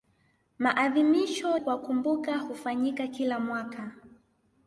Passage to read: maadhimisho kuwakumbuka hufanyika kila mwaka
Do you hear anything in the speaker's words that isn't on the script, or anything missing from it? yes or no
no